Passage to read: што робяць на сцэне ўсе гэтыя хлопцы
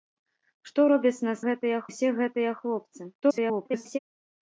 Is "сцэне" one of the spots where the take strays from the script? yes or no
yes